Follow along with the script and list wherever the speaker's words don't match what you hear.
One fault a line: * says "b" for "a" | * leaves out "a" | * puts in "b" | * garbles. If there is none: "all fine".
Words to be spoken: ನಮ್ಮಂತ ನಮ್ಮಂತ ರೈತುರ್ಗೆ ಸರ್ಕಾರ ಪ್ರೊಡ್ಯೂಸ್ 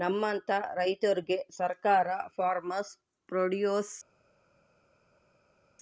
* leaves out "ನಮ್ಮಂತ"
* puts in "ಫಾರ್ಮರ್ಸ್"